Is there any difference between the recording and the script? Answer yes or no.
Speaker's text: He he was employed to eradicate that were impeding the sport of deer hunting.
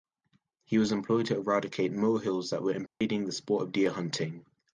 yes